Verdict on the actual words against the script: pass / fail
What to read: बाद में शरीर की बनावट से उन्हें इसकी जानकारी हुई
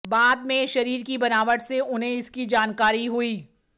pass